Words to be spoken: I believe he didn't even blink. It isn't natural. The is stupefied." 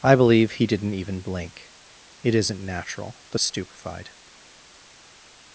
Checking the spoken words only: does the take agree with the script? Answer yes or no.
yes